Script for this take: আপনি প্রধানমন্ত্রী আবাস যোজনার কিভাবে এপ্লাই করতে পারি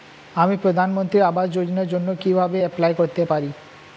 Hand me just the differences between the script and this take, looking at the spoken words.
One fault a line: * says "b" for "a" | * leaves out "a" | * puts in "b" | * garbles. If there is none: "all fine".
* says "আমি" for "আপনি"
* puts in "জন্য"